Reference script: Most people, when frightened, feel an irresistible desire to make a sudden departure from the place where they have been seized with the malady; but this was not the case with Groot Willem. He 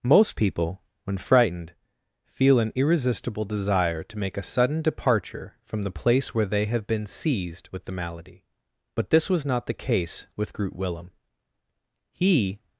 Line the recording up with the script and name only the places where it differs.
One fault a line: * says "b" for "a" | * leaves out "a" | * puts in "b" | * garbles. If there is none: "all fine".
all fine